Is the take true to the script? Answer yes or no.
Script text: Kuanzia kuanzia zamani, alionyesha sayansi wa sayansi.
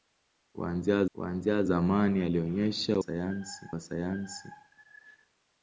yes